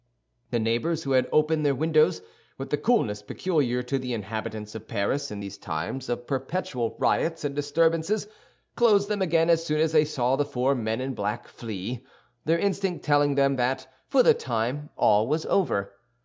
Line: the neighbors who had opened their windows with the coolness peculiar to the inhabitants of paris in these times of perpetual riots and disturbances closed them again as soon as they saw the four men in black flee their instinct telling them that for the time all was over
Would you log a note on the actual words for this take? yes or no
no